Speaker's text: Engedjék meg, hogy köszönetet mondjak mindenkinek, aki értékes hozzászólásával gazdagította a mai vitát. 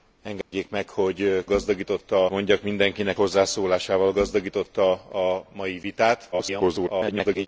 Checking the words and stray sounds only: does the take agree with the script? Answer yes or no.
no